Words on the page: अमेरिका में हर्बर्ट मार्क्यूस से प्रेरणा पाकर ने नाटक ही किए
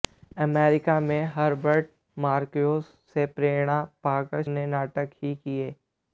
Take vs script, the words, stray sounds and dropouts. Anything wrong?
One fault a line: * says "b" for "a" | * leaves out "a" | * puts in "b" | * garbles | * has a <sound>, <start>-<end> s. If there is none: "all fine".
all fine